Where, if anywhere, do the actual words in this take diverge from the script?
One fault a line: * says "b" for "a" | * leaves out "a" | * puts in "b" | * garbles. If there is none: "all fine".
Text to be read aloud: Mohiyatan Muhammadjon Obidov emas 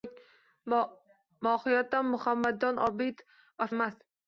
all fine